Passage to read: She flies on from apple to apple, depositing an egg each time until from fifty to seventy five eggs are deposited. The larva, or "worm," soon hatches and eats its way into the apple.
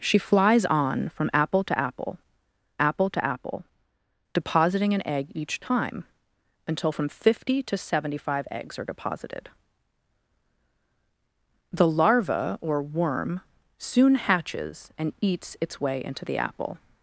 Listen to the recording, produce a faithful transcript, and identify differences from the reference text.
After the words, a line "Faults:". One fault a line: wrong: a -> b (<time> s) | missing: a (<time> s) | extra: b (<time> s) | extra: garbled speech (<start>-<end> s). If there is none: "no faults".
She flies on from apple to apple apple to apple, depositing an egg each time until from fifty to seventy five eggs are deposited. The larva, or "worm," soon hatches and eats its way into the apple.
Faults:
extra: apple to apple (2.8 s)